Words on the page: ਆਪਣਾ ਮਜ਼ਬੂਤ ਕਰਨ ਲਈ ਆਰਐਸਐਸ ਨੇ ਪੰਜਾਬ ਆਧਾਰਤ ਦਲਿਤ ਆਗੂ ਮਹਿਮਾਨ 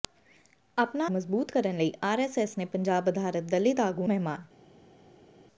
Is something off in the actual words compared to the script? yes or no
no